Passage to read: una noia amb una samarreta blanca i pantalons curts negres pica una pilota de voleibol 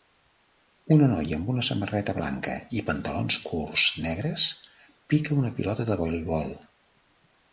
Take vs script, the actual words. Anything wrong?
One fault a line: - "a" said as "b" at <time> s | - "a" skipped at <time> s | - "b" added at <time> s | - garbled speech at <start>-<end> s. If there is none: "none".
none